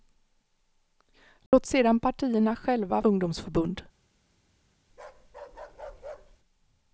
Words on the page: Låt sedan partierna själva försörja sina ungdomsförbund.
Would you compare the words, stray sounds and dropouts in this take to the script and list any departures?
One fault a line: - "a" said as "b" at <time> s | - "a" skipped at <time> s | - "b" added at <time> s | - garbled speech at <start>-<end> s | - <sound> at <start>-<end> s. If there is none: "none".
- dropout at 1.5-1.5 s
- "försörja sina" skipped at 3.0 s
- bark at 4.9-6.4 s